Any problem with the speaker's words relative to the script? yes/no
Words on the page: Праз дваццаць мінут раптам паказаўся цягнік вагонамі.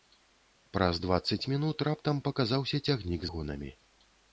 no